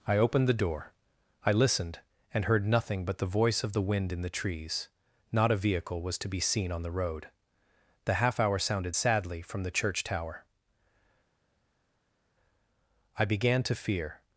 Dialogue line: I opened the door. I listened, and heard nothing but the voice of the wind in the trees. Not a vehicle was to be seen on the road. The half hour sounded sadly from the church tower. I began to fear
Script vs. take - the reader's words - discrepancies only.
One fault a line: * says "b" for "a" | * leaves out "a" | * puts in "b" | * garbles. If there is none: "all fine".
all fine